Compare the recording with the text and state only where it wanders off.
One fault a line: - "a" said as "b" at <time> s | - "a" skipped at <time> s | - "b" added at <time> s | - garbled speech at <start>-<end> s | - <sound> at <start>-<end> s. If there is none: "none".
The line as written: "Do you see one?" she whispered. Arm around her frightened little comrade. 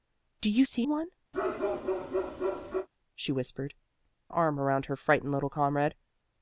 - bark at 1.3-2.9 s